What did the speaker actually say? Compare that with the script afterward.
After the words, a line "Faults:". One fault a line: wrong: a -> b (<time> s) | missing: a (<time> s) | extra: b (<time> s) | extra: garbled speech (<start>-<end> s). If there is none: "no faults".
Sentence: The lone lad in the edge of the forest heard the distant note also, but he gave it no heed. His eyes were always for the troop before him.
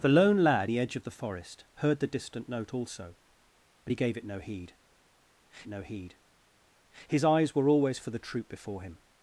The lone lad the edge of the forest heard the distant note also, but he gave it no heed no heed. His eyes were always for the troop before him.
Faults:
missing: in (0.7 s)
extra: no heed (5.7 s)